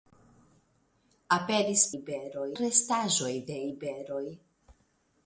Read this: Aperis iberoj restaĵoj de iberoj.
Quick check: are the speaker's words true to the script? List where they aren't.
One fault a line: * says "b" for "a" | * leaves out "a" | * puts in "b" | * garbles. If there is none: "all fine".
all fine